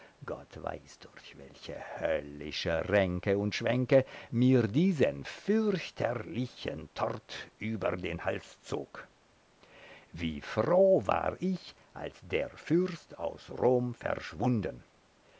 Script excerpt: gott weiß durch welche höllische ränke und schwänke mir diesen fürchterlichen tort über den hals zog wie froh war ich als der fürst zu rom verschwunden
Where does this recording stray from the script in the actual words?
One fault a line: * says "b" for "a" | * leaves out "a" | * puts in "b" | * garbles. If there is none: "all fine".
* says "aus" for "zu"